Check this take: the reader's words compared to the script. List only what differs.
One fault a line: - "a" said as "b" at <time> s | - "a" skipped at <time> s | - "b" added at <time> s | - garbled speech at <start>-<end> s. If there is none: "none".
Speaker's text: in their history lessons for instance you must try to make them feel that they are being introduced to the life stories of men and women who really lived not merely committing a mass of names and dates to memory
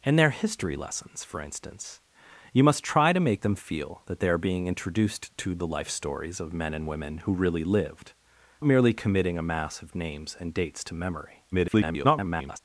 - "not" skipped at 8.1 s
- garbled speech at 11.5-12.6 s